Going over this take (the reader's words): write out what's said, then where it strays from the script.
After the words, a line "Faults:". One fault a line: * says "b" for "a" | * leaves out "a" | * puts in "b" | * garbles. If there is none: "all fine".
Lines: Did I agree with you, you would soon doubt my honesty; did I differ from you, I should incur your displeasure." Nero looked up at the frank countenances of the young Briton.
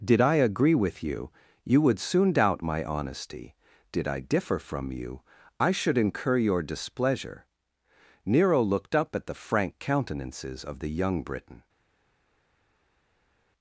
Did I agree with you, you would soon doubt my honesty; did I differ from you, I should incur your displeasure." Nero looked up at the frank countenances of the young Briton.
Faults:
all fine